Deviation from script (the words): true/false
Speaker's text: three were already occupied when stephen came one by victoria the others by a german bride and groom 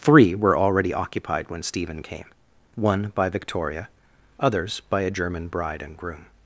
true